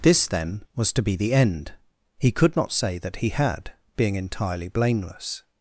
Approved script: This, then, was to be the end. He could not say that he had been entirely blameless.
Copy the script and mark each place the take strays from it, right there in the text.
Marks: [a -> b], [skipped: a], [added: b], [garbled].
This, then, was to be the end. He could not say that he had [been -> being] entirely blameless.